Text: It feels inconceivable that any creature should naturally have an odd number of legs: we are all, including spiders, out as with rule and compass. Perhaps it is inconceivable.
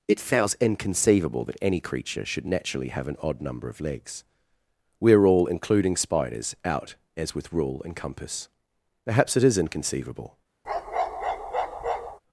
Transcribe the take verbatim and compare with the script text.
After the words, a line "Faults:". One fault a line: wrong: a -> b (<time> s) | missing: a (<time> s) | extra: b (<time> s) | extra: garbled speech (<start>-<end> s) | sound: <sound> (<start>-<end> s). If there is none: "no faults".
It feels inconceivable that any creature should naturally have an odd number of legs: we are all, including spiders, out as with rule and compass. Perhaps it is inconceivable.
Faults:
sound: bark (10.6-12.2 s)